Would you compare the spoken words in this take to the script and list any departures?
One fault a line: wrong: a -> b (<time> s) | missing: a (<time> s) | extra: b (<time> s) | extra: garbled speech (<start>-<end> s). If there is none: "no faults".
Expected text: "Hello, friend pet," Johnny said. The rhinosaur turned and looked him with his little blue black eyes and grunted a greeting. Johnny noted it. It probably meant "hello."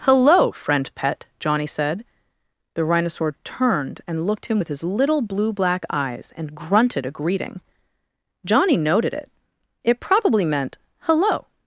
no faults